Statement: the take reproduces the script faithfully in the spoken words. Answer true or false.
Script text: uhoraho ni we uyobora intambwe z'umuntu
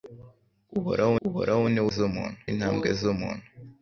false